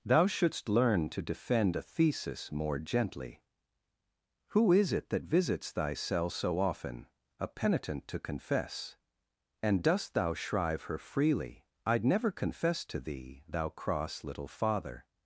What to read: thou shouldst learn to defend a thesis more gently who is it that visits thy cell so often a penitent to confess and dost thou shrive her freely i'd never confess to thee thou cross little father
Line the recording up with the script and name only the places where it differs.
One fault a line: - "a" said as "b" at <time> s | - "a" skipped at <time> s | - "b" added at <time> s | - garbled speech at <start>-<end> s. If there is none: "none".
none